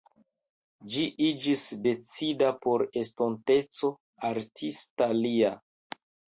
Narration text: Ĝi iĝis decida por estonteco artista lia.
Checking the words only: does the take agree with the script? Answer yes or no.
yes